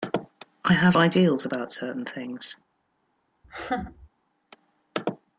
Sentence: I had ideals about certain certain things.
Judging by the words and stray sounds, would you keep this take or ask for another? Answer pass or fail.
fail